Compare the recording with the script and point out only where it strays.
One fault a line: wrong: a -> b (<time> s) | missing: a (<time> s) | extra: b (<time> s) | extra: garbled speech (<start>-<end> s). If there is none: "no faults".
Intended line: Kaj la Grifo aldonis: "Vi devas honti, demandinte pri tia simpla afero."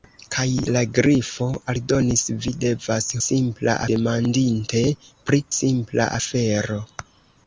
wrong: honti -> simpla (3.2 s)
missing: tia (5.4 s)